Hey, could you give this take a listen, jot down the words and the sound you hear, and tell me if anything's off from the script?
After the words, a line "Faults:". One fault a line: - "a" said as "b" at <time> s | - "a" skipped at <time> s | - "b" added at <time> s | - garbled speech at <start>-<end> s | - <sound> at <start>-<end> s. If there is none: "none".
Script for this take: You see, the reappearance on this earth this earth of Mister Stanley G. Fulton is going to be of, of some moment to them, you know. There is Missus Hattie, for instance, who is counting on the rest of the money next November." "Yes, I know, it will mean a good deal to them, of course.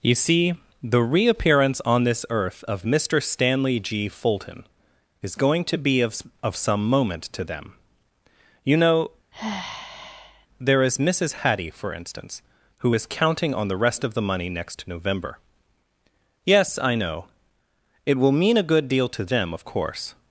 You see, the reappearance on this earth of Mister Stanley G. Fulton is going to be of, of some moment to them, you know. There is Missus Hattie, for instance, who is counting on the rest of the money next November." "Yes, I know, it will mean a good deal to them, of course.
Faults:
- "this earth" skipped at 2.6 s
- sigh at 9.3-10.5 s